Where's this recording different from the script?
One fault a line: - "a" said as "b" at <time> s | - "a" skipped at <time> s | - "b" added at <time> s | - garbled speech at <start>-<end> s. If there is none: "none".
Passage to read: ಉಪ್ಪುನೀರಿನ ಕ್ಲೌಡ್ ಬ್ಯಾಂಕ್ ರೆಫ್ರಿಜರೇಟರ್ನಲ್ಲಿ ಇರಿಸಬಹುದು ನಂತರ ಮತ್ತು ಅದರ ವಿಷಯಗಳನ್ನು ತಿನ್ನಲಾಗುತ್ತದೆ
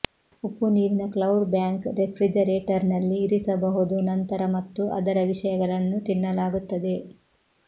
none